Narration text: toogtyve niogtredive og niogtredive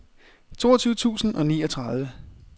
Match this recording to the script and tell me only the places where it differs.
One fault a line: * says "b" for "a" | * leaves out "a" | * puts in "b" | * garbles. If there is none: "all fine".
* says "tusind" for "niogtredive"